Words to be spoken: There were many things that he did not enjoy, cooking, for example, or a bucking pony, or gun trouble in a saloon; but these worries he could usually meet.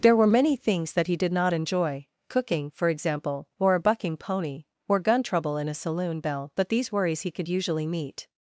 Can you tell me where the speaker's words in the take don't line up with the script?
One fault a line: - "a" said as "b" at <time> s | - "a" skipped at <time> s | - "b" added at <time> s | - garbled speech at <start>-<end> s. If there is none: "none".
- "bell" added at 6.2 s